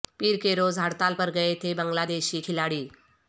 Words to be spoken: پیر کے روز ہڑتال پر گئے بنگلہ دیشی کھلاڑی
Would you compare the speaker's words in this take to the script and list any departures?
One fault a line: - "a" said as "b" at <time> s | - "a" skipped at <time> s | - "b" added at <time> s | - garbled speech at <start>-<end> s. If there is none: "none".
- "تھے" added at 1.6 s